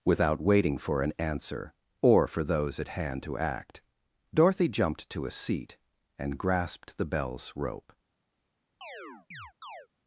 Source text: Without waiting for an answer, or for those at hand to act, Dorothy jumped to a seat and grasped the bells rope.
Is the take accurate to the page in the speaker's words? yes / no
yes